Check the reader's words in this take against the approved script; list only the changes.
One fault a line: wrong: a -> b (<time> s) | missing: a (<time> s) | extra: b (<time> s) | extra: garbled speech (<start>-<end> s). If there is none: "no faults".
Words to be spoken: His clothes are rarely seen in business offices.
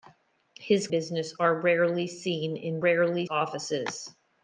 wrong: clothes -> business (0.9 s)
wrong: business -> rarely (2.8 s)